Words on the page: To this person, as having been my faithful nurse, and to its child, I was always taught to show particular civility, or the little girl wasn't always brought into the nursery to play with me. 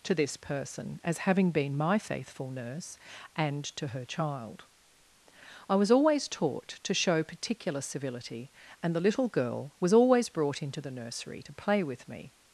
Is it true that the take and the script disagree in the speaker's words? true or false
true